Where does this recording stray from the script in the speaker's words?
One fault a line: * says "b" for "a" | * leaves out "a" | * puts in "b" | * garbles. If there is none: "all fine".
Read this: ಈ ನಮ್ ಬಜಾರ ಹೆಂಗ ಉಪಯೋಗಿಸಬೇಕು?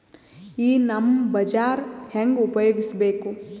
all fine